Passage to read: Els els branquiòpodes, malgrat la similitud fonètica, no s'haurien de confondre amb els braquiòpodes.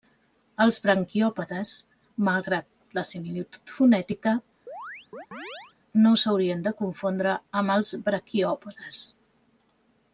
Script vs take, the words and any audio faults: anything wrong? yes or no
yes